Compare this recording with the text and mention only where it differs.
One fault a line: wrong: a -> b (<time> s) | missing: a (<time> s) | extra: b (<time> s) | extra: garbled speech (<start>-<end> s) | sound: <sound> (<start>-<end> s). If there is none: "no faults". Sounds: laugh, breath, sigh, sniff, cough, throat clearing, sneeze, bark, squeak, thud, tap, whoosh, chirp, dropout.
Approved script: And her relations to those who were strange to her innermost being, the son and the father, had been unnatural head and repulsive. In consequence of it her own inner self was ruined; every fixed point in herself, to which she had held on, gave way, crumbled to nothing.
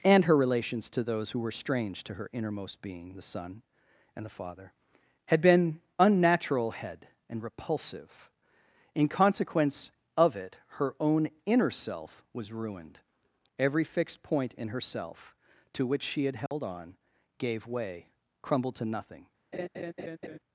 sound: dropout (16.5-16.5 s)
sound: laugh (19.5-20.4 s)